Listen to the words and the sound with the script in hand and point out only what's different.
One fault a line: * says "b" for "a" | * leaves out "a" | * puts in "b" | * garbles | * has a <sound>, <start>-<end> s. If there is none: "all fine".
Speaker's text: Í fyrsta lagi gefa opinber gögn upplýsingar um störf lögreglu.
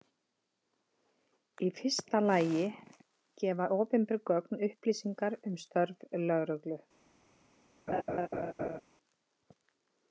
* has a laugh, 7.9-8.8 s